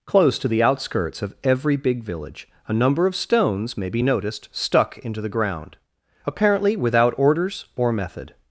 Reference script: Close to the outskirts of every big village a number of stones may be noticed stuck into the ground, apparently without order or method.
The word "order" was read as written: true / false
false